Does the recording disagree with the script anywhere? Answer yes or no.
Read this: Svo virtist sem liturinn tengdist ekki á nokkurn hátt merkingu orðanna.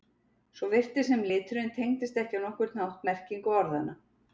no